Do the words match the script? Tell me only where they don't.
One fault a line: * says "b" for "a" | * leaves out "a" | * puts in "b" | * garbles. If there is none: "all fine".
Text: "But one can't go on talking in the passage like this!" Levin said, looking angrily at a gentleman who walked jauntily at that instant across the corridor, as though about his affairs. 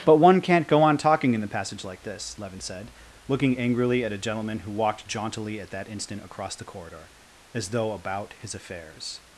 all fine